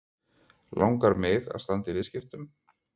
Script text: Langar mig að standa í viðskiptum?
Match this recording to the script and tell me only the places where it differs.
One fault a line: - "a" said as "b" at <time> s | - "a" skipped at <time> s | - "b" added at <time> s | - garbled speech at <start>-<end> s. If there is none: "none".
none